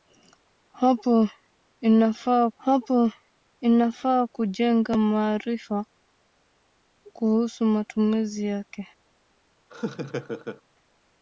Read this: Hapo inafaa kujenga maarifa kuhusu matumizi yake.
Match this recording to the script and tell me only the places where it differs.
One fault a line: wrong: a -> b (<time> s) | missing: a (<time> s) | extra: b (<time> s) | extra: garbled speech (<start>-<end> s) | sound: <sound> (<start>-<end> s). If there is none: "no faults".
extra: hapo inafaa (2.6 s)
sound: laugh (9.7-10.6 s)